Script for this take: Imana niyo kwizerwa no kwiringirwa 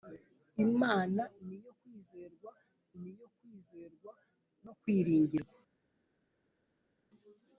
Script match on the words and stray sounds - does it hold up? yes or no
no